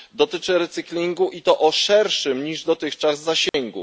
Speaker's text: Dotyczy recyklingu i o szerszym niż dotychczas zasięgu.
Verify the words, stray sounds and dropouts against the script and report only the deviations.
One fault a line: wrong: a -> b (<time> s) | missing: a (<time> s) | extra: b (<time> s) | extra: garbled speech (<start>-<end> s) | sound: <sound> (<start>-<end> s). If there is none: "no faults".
extra: to (1.4 s)
sound: dropout (3.5-3.5 s)